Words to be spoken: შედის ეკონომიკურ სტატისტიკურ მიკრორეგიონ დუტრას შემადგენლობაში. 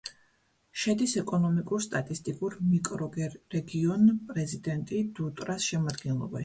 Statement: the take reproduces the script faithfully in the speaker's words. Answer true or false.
false